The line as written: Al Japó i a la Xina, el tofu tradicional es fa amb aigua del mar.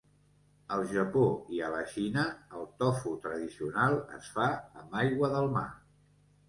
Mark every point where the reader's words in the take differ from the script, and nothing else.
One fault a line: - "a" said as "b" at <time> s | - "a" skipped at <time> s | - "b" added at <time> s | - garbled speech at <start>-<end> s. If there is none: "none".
none